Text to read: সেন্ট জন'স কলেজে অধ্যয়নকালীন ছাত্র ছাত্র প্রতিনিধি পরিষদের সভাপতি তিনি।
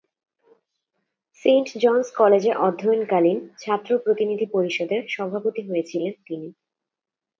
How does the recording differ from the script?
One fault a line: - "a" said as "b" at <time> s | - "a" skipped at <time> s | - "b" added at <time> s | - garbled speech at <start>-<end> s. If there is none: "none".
- "ছাত্র" skipped at 3.9 s
- "হয়েছিলেন" added at 5.7 s